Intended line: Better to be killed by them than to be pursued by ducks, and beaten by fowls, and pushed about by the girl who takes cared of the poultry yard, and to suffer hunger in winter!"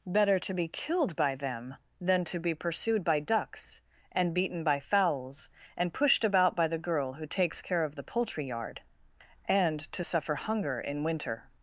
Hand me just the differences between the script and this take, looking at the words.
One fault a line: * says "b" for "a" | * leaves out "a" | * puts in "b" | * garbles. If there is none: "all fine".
* says "care" for "cared"